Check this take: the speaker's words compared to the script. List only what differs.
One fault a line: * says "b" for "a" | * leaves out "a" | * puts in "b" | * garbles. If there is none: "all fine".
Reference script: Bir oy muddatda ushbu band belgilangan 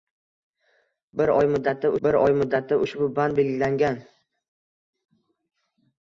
* puts in "bir oy muddatda"